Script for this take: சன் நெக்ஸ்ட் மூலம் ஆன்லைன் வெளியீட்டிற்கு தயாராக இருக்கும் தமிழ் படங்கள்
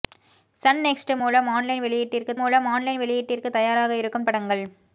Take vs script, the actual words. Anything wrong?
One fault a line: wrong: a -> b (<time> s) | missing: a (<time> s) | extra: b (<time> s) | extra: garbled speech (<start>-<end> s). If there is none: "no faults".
extra: மூலம் ஆன்லைன் வெளியீட்டிற்கு (2.4 s)
missing: தமிழ் (4.3 s)